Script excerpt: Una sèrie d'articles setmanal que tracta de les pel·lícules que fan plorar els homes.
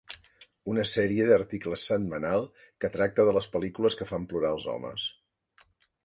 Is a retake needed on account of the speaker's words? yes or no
no